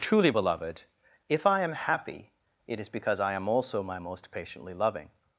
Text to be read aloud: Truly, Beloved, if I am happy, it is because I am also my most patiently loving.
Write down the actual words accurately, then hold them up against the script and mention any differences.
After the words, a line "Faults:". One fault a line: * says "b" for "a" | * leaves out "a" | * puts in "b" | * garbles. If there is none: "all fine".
Truly, Beloved, if I am happy, it is because I am also my most patiently loving.
Faults:
all fine